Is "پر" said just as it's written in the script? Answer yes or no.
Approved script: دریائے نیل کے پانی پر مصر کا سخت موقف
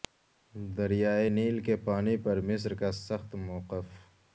yes